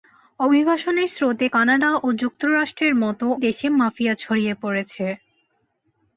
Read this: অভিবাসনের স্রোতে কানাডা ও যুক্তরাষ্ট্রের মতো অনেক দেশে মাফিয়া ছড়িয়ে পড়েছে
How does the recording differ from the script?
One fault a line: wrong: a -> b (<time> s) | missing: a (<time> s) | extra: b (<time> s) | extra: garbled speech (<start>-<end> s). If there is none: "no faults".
missing: অনেক (3.3 s)